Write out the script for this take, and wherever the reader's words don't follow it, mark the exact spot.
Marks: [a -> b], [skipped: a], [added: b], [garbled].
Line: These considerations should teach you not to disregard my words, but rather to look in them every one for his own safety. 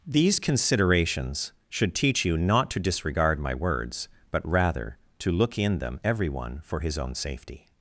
These considerations should teach you not to disregard my words, but rather to look in them every one for his own safety.